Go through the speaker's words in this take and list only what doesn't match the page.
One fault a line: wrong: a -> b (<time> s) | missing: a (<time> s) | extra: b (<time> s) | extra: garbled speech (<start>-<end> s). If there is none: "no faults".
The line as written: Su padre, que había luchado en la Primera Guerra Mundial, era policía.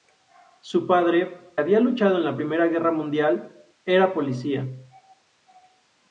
missing: que (1.4 s)